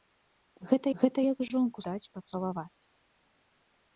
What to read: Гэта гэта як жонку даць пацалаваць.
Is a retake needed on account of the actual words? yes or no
no